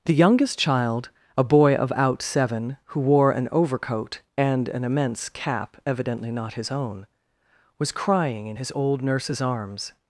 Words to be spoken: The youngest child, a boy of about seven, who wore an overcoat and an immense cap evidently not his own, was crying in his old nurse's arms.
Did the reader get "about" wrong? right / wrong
wrong